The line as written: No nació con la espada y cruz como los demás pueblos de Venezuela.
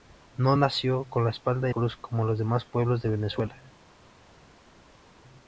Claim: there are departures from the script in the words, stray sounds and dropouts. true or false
false